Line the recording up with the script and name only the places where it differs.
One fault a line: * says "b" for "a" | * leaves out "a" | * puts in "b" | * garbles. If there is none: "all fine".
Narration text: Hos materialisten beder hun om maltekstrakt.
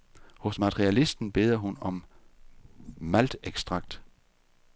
all fine